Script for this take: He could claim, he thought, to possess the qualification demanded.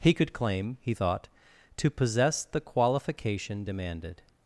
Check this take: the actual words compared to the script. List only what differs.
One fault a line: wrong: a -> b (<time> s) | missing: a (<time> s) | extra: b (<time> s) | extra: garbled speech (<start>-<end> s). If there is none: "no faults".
no faults